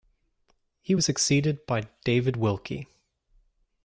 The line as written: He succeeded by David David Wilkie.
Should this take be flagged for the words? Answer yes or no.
yes